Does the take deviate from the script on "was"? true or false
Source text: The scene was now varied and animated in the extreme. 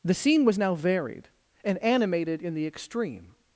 false